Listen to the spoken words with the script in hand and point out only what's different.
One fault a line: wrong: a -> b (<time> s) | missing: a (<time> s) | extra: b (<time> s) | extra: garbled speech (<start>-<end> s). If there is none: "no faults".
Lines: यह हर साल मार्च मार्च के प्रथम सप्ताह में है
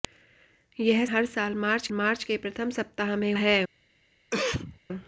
no faults